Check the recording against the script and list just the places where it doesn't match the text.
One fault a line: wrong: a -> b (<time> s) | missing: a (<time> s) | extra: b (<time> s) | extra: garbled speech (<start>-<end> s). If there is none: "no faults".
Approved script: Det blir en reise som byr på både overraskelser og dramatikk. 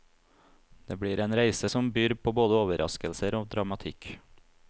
no faults